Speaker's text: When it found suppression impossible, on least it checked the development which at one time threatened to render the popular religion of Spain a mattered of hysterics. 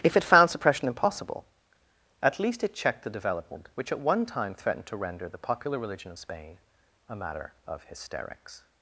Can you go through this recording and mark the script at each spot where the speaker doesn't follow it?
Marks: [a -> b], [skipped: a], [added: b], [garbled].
[When -> If] it found suppression impossible, [on -> at] least it checked the development which at one time threatened to render the popular religion of Spain a [mattered -> matter] of hysterics.